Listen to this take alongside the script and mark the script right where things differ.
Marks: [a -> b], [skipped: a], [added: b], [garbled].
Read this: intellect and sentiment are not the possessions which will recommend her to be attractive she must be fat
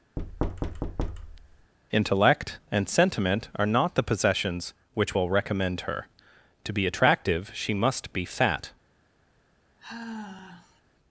intellect and sentiment are not the possessions which will recommend her to be attractive she must be fat